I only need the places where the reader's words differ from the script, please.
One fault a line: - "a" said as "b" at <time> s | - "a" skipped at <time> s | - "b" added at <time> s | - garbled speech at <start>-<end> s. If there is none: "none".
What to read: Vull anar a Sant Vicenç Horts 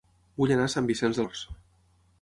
none